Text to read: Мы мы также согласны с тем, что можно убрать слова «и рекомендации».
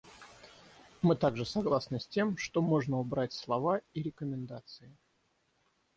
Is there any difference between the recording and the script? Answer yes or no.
yes